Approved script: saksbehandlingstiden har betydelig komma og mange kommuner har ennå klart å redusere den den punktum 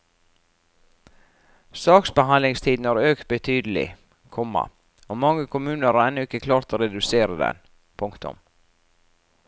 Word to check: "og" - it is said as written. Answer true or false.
true